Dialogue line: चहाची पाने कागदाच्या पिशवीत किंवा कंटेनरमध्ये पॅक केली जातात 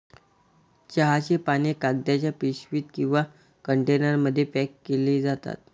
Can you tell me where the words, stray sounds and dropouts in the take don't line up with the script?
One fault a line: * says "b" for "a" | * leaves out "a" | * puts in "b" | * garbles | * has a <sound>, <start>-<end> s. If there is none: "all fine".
all fine